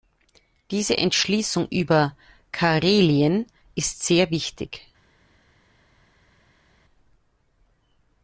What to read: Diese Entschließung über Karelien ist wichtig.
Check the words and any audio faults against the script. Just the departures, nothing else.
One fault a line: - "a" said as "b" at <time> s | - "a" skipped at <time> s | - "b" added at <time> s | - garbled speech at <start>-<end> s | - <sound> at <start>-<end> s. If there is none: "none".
- "sehr" added at 4.0 s